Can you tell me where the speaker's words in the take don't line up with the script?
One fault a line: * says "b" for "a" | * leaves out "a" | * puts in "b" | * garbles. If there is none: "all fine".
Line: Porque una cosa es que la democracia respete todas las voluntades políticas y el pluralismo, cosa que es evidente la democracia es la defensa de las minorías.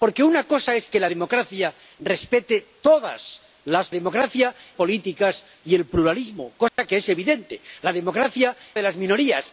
* says "democracia" for "voluntades"
* leaves out "es la defensa"